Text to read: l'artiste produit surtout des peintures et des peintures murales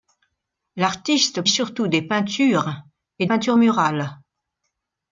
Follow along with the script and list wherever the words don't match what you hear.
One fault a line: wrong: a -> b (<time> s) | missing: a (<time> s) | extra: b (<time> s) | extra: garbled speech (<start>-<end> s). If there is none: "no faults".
missing: produit (1.4 s)
missing: des (3.3 s)